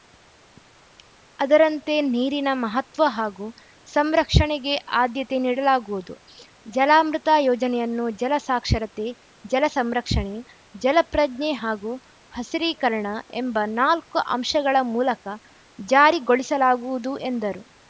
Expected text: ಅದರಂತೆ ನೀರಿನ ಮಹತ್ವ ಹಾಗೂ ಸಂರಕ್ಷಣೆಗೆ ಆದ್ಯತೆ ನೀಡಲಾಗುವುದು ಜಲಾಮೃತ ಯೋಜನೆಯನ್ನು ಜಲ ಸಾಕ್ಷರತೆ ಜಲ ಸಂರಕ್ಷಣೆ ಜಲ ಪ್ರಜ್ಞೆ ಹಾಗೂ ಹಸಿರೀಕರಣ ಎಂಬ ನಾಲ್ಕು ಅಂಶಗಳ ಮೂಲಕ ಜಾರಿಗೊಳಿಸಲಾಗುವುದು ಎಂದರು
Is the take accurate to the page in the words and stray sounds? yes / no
yes